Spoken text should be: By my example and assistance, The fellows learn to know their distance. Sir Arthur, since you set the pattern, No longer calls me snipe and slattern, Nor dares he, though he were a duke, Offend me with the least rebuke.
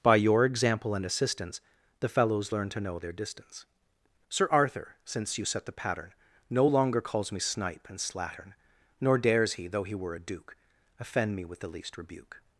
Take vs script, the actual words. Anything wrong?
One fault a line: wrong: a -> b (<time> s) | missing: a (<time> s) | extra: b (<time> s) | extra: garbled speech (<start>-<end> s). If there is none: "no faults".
wrong: my -> your (0.1 s)